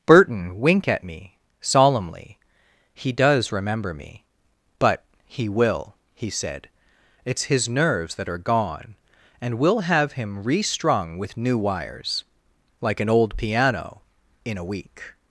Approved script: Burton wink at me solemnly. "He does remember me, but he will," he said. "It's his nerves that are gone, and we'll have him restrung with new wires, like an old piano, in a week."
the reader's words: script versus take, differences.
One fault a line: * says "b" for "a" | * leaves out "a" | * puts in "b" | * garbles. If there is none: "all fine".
all fine